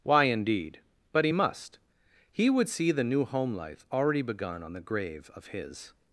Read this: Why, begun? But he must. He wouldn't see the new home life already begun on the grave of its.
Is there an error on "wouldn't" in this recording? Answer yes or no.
yes